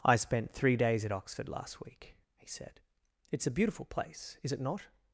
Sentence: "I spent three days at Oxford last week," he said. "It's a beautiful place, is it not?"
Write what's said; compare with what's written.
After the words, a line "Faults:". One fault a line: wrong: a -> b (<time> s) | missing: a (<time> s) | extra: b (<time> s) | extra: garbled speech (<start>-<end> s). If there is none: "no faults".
"I spent three days at Oxford last week," he said. "It's a beautiful place, is it not?"
Faults:
no faults